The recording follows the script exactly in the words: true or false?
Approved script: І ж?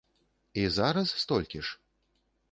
false